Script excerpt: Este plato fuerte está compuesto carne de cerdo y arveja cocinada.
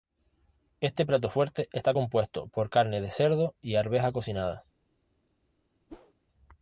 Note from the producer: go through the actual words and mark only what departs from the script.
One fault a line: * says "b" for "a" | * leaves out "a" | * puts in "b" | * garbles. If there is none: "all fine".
* puts in "por"